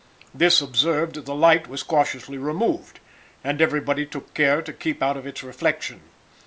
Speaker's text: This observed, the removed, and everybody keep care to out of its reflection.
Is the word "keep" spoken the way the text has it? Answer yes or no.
no